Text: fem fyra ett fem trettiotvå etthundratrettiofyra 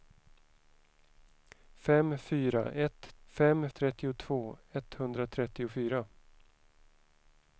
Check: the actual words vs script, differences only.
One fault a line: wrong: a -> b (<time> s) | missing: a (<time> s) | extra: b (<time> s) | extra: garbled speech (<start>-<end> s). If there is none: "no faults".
no faults